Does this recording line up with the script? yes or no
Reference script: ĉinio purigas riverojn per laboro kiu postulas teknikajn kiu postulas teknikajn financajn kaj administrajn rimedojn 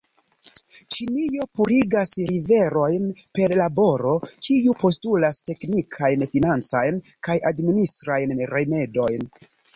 no